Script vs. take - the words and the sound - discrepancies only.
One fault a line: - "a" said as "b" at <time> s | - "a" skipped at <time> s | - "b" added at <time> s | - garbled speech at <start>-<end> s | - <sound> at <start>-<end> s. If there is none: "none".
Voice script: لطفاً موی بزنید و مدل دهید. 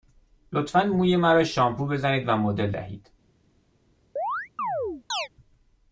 - "مرا شامپو" added at 1.1 s
- chirp at 4.2-5.3 s